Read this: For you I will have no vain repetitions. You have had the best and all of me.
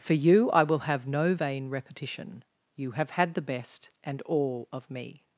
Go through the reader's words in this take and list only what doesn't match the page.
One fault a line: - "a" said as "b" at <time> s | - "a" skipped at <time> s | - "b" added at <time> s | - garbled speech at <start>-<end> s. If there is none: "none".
- "repetitions" said as "repetition" at 1.7 s